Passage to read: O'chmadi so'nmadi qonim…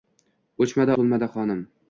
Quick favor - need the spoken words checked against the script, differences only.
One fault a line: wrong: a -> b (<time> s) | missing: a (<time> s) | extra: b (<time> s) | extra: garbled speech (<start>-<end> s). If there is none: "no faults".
no faults